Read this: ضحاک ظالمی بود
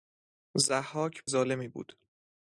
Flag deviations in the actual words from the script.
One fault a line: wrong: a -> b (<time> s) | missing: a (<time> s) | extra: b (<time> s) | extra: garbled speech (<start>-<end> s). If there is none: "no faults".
no faults